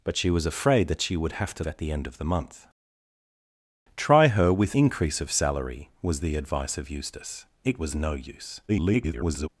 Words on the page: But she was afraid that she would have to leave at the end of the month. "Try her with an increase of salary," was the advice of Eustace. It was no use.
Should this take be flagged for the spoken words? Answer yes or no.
yes